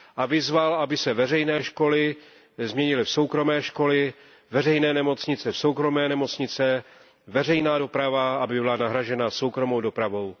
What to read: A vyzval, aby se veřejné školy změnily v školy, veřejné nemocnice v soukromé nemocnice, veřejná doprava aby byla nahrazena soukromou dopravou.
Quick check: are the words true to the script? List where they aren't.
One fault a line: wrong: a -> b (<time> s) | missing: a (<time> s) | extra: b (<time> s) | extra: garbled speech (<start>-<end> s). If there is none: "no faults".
extra: soukromé (3.1 s)